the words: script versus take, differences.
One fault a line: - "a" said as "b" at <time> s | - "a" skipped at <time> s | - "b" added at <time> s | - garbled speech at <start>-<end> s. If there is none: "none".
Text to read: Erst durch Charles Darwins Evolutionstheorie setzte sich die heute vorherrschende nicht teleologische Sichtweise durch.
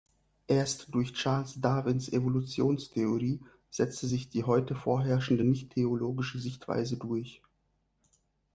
none